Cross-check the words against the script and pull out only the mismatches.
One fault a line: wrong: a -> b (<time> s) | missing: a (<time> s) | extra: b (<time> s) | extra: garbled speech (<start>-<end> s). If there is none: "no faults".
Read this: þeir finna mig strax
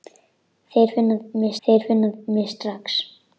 extra: þeir finna mig (1.7 s)